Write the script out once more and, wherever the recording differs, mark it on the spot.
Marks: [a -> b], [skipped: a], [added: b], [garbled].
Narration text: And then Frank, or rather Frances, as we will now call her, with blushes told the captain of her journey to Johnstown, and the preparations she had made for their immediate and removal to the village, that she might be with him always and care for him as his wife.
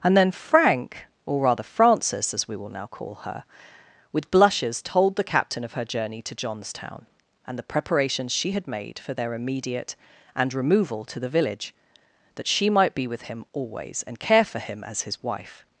And then Frank, or rather Frances, as we will now call her, with blushes told the captain of her journey to Johnstown, and the preparations she had made for their immediate and removal to the village, that she might be with him always and care for him as his wife.